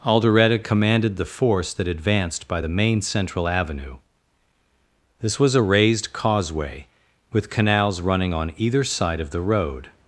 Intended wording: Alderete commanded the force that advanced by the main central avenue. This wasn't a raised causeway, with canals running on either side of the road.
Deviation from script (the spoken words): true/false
true